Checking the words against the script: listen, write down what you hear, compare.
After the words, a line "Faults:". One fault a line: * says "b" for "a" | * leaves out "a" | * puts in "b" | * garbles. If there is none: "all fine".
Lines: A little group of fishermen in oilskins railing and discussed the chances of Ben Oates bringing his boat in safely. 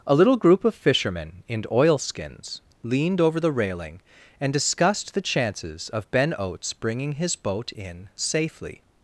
A little group of fishermen in oilskins leaned over the railing and discussed the chances of Ben Oates bringing his boat in safely.
Faults:
* puts in "leaned over the"